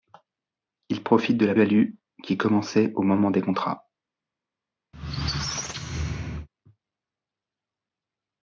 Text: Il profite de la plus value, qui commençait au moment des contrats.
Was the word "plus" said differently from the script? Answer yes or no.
yes